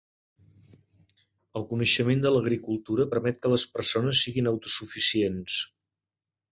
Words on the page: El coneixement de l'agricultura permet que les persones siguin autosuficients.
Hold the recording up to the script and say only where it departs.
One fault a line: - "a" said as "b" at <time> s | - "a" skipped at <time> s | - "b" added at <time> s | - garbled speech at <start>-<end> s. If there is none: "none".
none